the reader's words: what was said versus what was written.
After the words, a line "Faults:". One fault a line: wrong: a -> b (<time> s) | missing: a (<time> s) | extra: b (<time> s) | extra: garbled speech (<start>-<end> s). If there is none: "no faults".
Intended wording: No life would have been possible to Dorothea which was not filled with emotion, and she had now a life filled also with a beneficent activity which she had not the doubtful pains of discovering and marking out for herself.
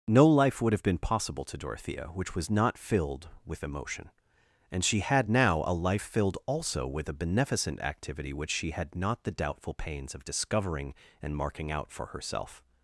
No life would have been possible to Dorothea which was not filled with emotion, and she had now a life filled also with a beneficent activity which she had not the doubtful pains of discovering and marking out for herself.
Faults:
no faults